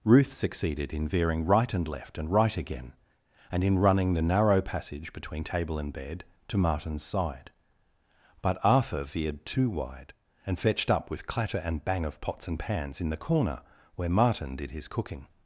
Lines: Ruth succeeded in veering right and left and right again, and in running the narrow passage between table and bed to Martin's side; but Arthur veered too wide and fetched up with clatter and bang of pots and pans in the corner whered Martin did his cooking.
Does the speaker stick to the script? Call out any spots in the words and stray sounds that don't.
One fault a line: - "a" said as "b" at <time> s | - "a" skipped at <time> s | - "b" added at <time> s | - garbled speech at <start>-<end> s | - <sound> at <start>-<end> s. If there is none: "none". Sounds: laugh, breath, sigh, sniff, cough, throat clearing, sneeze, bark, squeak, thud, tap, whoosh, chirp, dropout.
- "whered" said as "where" at 13.9 s